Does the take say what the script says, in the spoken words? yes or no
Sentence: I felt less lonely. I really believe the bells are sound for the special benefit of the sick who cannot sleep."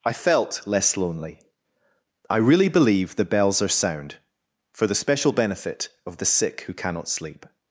yes